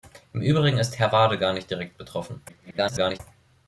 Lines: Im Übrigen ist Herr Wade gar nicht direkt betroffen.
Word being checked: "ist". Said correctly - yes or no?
yes